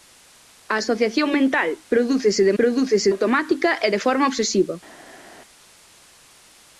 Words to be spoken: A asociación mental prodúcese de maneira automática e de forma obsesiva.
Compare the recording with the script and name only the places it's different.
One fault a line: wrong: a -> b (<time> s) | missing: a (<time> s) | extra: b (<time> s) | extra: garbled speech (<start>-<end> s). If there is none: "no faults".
wrong: maneira -> prodúcese (2.6 s)